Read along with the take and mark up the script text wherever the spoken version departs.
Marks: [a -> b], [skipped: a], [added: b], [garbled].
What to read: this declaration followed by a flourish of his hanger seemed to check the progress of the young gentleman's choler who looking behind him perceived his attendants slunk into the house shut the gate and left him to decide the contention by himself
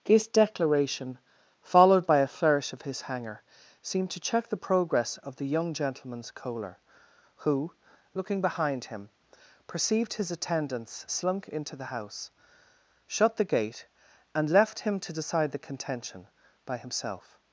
this declaration followed by a flourish of his hanger seemed to check the progress of the young gentleman's choler who looking behind him perceived his attendants slunk into the house shut the gate and left him to decide the contention by himself